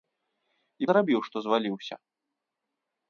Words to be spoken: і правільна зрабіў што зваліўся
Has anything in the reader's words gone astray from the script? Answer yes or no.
yes